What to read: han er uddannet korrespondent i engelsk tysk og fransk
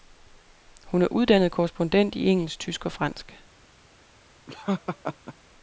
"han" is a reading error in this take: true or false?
true